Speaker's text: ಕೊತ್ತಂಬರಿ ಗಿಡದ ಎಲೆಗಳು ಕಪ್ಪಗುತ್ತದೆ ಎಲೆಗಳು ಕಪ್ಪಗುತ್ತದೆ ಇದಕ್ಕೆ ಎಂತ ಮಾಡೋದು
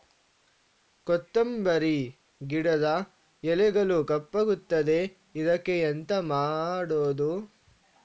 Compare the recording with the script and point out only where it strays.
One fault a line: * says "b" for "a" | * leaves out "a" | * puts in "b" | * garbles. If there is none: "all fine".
* leaves out "ಎಲೆಗಳು ಕಪ್ಪಗುತ್ತದೆ"